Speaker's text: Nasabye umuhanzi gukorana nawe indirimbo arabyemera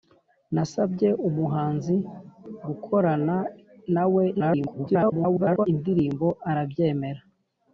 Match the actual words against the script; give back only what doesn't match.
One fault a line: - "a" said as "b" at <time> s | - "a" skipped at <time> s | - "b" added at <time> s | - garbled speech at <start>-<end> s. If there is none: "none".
- garbled speech at 4.3-5.7 s